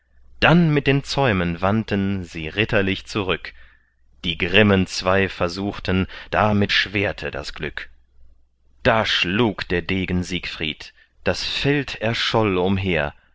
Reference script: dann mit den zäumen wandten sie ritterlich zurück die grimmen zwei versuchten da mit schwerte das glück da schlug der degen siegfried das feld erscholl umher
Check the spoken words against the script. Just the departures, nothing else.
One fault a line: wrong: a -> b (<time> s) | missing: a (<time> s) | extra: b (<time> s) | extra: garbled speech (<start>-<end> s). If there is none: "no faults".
no faults